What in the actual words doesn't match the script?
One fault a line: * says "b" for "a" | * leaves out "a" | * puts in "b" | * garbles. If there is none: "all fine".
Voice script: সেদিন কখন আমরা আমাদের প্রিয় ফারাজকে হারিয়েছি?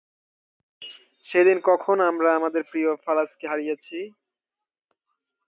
all fine